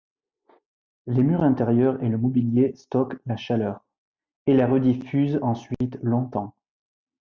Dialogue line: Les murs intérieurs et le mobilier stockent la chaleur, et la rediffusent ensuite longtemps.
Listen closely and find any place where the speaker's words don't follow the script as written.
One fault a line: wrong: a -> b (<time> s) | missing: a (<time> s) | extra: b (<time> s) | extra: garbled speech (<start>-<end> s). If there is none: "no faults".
no faults